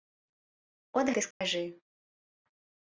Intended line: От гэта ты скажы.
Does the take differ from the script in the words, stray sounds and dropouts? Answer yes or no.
yes